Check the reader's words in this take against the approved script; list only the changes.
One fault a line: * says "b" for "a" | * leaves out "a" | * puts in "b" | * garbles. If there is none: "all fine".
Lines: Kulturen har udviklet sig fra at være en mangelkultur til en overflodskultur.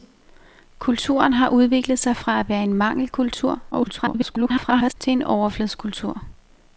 * garbles